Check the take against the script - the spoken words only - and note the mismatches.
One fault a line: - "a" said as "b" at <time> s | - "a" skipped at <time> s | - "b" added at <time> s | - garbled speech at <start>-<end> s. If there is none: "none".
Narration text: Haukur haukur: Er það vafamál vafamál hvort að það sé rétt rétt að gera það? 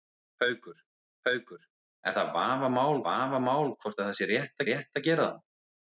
none